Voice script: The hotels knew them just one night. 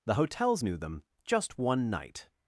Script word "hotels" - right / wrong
right